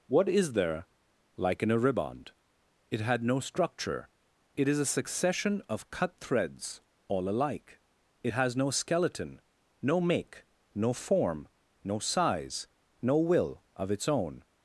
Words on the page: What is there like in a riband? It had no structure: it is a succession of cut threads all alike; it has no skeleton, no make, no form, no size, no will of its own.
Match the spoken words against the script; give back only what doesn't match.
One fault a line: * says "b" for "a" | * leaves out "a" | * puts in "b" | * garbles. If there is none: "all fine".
all fine